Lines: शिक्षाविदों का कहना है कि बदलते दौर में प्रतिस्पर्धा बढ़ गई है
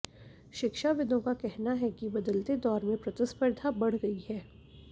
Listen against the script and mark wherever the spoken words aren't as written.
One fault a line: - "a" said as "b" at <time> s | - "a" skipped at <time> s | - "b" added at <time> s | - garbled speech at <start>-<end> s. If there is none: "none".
none